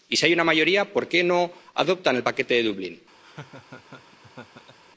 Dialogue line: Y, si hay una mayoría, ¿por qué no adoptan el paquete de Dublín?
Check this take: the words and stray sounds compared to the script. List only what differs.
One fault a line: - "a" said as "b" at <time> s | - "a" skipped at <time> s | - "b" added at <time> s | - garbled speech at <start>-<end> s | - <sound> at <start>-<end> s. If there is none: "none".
- laugh at 3.2-4.8 s